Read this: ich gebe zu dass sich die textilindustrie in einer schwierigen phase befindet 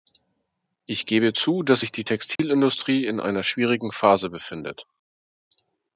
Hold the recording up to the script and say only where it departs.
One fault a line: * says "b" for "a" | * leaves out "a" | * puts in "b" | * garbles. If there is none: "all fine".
all fine